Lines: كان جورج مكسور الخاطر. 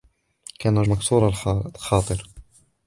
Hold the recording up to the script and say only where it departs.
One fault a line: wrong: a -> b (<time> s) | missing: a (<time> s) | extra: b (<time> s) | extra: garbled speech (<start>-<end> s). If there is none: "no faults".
missing: جورج (0.8 s)